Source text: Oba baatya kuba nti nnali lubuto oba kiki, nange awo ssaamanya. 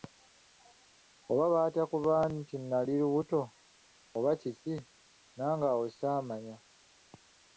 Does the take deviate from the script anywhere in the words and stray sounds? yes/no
no